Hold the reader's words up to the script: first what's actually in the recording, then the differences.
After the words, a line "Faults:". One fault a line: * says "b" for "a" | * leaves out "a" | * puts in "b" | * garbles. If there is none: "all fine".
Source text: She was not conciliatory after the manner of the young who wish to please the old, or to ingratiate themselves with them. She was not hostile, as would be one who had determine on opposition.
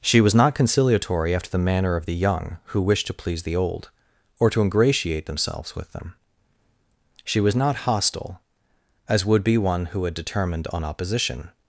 She was not conciliatory after the manner of the young who wish to please the old, or to ingratiate themselves with them. She was not hostile, as would be one who had determined on opposition.
Faults:
* says "determined" for "determine"